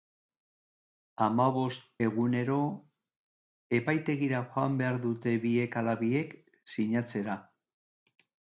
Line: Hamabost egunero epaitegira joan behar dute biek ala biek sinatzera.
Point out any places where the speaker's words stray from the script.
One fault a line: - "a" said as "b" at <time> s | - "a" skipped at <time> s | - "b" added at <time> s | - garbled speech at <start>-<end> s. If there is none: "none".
none